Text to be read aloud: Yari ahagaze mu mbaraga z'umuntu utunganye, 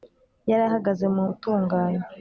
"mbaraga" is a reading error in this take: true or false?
true